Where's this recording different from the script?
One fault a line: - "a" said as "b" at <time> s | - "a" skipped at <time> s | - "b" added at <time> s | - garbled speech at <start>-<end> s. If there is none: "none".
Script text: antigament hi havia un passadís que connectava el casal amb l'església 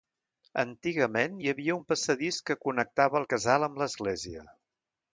none